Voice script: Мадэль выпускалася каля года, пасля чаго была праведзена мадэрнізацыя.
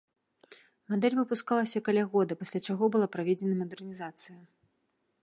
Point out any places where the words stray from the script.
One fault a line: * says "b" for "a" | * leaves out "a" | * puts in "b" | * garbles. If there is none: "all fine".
all fine